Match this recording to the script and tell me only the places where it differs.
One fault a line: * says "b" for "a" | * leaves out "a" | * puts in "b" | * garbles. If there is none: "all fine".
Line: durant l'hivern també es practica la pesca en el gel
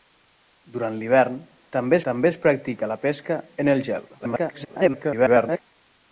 * puts in "també"
* garbles